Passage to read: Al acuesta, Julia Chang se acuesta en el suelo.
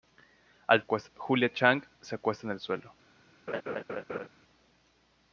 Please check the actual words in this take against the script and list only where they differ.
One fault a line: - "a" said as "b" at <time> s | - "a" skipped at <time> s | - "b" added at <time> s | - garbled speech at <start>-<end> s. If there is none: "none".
none